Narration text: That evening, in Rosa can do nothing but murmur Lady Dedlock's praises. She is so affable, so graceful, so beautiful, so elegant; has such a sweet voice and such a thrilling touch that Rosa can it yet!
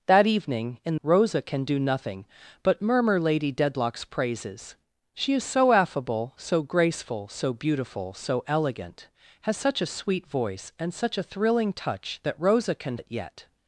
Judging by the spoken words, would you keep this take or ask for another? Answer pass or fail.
pass